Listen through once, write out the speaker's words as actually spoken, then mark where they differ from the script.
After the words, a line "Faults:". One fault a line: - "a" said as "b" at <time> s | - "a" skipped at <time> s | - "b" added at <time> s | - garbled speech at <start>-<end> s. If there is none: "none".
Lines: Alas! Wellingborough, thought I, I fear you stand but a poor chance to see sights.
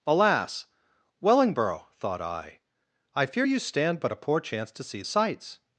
Alas! Wellingborough, thought I, I fear you stand but a poor chance to see sights.
Faults:
none